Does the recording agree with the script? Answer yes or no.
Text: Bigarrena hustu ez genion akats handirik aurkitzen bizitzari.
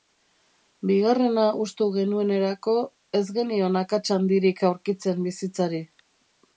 no